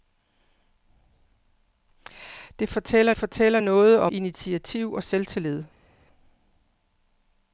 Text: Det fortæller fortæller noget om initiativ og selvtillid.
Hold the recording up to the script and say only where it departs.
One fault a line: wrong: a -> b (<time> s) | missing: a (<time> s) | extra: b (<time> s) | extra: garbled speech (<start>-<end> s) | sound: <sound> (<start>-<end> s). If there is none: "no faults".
no faults